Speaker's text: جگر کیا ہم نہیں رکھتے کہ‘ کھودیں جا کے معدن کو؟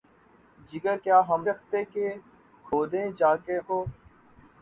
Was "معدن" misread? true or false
true